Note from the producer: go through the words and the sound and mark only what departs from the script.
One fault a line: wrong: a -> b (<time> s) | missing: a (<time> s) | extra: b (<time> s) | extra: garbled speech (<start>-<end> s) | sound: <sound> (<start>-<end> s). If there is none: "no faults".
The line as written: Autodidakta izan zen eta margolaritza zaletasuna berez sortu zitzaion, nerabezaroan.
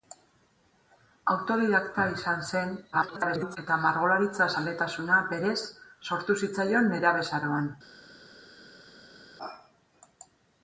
extra: garbled speech (2.9-3.6 s)